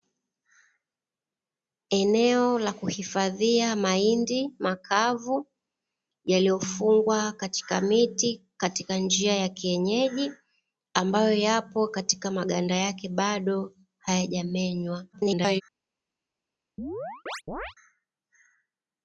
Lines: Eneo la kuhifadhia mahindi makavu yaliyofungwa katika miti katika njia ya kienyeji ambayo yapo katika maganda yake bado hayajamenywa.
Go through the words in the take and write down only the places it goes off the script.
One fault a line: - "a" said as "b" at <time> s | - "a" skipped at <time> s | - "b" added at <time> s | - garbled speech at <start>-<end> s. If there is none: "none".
- garbled speech at 15.1-15.6 s